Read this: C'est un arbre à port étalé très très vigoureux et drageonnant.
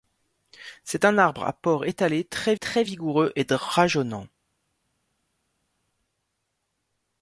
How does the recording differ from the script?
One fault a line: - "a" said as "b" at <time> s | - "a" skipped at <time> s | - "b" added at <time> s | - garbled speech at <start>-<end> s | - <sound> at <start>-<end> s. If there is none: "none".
none